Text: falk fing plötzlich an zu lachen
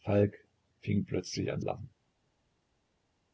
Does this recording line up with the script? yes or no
no